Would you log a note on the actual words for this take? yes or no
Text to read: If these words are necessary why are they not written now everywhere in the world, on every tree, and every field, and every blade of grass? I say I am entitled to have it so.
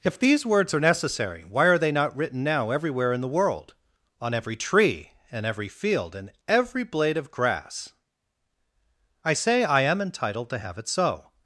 no